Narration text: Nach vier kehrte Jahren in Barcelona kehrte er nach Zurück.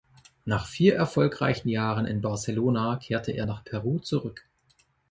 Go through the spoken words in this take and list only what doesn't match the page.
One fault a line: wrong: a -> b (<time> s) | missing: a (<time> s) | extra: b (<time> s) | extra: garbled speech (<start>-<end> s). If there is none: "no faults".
wrong: kehrte -> erfolgreichen (0.9 s)
extra: Peru (3.6 s)